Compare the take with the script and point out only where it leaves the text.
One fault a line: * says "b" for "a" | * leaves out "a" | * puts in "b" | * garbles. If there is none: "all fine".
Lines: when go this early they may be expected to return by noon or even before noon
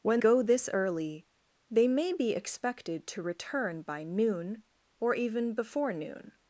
all fine